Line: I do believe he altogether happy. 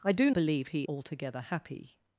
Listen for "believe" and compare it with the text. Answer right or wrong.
right